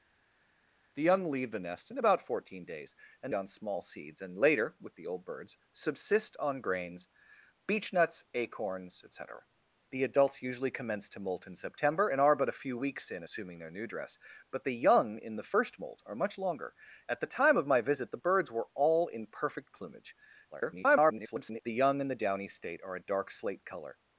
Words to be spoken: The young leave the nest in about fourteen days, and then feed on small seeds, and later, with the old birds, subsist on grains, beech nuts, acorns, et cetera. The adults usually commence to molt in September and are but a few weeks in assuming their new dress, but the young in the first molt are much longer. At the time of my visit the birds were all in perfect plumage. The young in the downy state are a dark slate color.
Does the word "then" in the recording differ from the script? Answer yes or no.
yes